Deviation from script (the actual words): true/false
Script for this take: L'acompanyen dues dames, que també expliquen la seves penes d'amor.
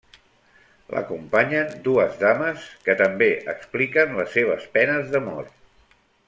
true